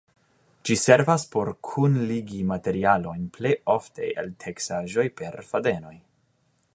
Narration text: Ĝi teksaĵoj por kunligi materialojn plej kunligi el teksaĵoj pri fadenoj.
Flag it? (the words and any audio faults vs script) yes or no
yes